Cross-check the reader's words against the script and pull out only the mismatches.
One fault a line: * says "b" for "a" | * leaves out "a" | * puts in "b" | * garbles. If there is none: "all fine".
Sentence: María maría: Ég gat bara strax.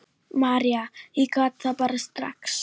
* leaves out "maría"
* puts in "það"